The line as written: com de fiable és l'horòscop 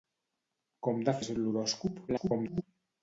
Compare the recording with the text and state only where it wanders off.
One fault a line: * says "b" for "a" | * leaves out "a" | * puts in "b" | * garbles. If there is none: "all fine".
* leaves out "fiable"
* garbles